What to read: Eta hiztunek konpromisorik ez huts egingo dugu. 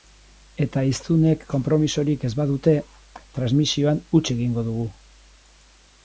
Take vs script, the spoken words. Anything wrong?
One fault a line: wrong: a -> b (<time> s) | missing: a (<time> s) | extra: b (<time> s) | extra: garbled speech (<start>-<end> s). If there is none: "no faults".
extra: badute transmisioan (2.4 s)